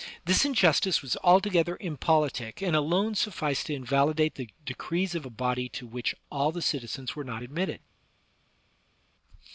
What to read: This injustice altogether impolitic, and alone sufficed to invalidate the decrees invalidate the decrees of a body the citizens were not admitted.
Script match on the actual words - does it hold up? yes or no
no